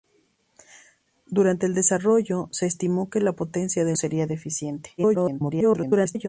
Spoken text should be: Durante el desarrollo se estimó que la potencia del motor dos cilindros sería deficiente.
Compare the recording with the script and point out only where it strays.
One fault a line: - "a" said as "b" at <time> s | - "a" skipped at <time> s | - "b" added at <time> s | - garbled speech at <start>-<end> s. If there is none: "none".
- "motor dos cilindros" skipped at 4.0 s
- garbled speech at 5.0-6.3 s